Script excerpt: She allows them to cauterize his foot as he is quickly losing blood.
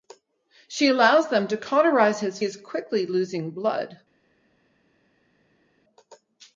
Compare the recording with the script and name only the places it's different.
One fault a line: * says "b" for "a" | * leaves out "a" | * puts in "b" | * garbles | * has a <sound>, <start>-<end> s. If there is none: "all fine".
* leaves out "foot as he"